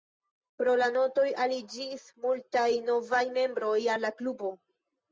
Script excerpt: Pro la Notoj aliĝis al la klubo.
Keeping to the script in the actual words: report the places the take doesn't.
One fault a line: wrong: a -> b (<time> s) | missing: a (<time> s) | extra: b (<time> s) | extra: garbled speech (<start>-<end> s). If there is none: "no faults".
extra: multaj novaj membroj (2.2 s)